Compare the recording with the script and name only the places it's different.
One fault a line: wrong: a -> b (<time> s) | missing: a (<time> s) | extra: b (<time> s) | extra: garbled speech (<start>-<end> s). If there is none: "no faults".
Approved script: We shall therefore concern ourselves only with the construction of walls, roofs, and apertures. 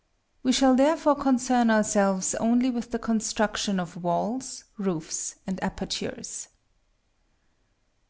no faults